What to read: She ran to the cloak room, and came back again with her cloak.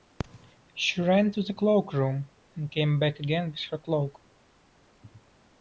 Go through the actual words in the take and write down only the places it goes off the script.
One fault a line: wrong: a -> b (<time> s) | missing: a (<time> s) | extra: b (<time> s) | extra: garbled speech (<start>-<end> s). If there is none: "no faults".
no faults